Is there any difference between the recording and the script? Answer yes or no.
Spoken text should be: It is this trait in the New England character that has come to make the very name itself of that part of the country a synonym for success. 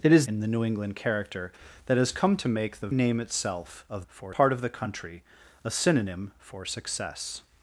yes